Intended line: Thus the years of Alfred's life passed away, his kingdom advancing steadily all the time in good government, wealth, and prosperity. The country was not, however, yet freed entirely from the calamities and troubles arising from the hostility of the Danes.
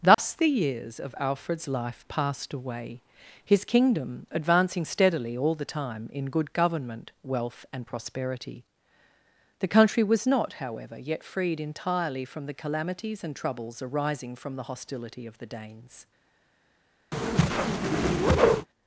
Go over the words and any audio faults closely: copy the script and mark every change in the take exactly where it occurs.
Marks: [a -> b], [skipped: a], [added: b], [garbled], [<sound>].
Thus [dropout] the years of Alfred's life passed away, his kingdom advancing steadily all the time in good government, wealth, and prosperity. The country was not, however, yet freed entirely from the calamities and troubles arising from the hostility of the Danes. [whoosh]